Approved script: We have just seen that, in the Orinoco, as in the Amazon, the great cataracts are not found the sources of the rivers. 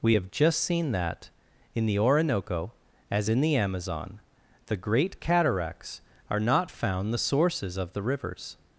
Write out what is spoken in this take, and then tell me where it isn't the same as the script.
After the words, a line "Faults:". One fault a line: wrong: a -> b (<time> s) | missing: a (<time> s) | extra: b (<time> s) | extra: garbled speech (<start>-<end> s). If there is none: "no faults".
We have just seen that, in the Orinoco, as in the Amazon, the great cataracts are not found the sources of the rivers.
Faults:
no faults